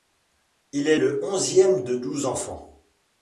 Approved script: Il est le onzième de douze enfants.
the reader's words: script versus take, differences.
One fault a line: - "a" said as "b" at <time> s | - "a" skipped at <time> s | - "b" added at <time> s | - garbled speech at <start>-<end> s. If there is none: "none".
none